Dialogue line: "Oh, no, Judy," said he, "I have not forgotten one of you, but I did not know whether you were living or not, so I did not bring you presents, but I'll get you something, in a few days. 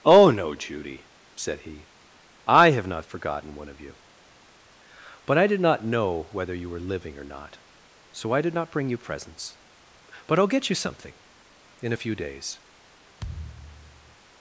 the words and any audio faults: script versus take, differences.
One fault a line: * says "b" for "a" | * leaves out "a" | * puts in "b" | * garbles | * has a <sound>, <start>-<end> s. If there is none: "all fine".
* has a thud, 13.2-14.2 s